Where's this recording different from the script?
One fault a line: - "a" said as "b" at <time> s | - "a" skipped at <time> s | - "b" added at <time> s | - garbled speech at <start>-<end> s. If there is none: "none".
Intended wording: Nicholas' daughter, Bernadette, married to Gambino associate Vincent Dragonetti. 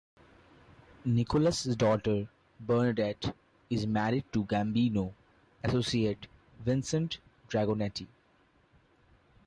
- "is" added at 3.7 s